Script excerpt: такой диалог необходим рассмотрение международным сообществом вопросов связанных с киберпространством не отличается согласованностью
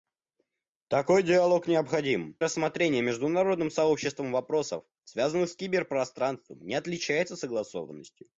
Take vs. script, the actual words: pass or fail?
pass